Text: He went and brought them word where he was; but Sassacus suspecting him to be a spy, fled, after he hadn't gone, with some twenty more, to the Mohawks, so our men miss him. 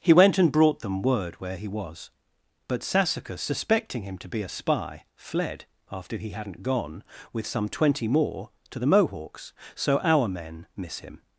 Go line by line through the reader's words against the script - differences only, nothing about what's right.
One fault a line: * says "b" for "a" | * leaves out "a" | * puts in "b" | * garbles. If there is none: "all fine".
all fine